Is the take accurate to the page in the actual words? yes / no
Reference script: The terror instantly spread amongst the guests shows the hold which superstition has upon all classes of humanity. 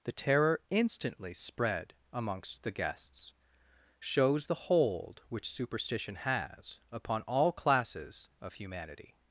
yes